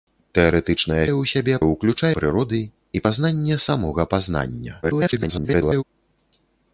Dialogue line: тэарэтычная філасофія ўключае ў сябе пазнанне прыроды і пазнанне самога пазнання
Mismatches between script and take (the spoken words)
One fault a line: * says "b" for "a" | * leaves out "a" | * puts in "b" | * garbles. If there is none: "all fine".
* leaves out "філасофія ўключае"
* says "ўключае" for "пазнанне"
* garbles